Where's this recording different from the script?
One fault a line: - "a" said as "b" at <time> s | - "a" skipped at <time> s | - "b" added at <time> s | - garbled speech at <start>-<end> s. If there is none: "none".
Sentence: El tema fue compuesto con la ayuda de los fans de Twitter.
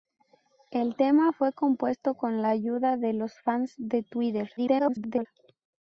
- garbled speech at 4.6-5.3 s